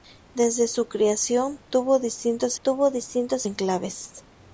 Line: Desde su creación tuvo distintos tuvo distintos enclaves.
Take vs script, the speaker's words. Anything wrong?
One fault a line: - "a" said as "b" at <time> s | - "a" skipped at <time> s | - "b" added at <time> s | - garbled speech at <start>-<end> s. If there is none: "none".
none